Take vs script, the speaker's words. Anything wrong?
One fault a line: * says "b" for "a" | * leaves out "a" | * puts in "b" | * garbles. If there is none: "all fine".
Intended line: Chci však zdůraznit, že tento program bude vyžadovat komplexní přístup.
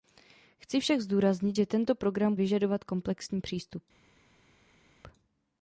* leaves out "bude"